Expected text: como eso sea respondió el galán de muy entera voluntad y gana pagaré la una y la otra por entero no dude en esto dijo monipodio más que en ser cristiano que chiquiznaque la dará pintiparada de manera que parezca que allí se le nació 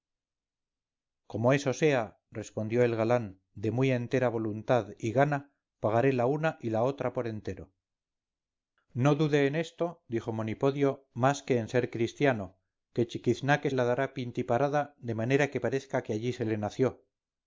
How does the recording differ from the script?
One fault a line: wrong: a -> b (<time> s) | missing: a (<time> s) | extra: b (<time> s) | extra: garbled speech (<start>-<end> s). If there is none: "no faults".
no faults